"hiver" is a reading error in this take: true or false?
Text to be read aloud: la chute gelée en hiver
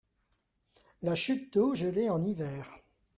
false